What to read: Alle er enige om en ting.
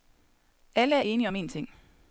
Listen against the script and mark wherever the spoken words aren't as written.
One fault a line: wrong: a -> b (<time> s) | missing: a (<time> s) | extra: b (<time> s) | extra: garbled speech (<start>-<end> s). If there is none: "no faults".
no faults